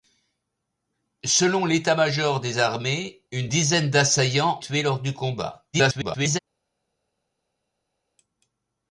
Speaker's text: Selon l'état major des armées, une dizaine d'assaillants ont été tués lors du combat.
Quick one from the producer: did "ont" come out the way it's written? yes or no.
no